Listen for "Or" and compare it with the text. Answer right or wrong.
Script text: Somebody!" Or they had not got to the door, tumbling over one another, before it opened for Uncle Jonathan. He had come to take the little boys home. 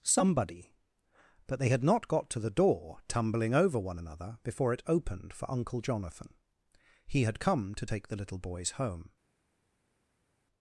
wrong